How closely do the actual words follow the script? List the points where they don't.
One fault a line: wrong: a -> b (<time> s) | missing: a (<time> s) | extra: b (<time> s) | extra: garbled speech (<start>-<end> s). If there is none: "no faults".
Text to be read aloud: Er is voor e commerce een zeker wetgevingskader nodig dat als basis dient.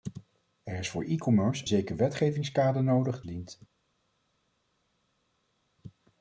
missing: een (1.6 s)
missing: dat als basis (3.2 s)